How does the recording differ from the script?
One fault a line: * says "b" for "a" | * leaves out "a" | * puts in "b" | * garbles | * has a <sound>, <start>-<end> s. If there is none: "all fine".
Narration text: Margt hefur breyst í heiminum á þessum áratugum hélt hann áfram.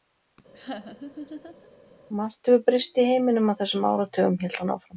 * has a laugh, 0.5-1.7 s